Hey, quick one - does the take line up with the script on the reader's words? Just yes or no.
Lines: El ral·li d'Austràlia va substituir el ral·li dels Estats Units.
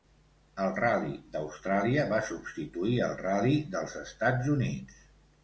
yes